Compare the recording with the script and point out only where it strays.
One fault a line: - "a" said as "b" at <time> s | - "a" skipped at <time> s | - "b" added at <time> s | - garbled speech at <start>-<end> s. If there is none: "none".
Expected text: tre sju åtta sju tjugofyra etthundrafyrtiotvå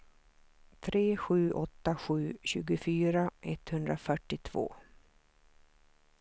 none